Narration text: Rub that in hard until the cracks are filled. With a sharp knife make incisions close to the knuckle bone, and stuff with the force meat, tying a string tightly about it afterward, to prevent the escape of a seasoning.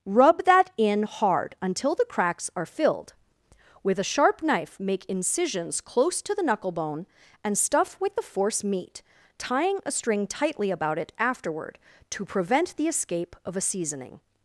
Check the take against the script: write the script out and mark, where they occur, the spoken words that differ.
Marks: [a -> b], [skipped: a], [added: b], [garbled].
Rub that in hard until the cracks are filled. With a sharp knife make incisions close to the knuckle bone, and stuff with the force meat, tying a string tightly about it afterward, to prevent the escape of a seasoning.